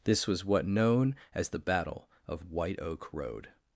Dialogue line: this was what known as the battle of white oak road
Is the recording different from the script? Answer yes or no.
no